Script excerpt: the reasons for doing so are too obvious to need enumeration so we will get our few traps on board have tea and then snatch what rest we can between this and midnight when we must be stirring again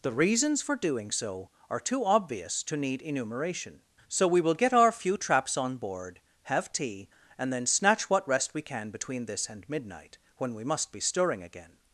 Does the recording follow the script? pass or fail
pass